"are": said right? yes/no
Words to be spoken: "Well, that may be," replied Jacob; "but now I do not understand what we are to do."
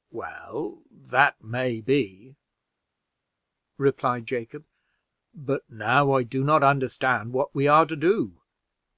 yes